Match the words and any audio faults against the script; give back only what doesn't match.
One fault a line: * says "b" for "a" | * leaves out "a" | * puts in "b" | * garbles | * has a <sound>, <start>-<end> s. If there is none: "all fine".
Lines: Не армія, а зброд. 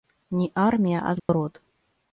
* has a dropout, 1.2-1.3 s